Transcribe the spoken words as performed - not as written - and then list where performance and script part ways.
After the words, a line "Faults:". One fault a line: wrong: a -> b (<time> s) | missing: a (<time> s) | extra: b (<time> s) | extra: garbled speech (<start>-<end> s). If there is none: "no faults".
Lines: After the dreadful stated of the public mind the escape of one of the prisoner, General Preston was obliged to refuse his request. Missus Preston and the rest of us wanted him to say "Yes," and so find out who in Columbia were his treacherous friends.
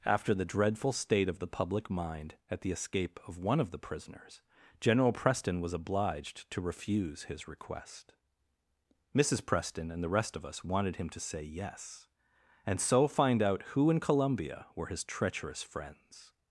After the dreadful state of the public mind at the escape of one of the prisoners, General Preston was obliged to refuse his request. Missus Preston and the rest of us wanted him to say "Yes," and so find out who in Columbia were his treacherous friends.
Faults:
wrong: stated -> state (0.9 s)
extra: at (2.5 s)
wrong: prisoner -> prisoners (3.8 s)